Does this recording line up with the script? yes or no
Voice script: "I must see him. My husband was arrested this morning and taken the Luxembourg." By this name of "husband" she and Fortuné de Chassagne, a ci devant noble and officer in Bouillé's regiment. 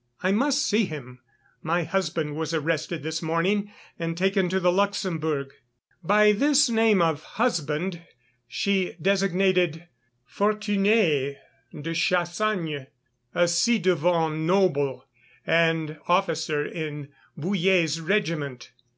no